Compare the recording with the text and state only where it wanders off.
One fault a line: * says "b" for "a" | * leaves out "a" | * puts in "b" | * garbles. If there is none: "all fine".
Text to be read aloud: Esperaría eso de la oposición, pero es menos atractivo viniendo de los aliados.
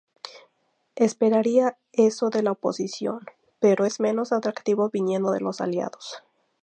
all fine